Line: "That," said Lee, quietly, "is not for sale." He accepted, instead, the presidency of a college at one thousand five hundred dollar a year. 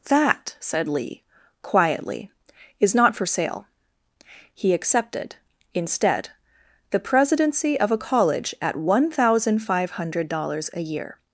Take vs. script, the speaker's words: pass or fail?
fail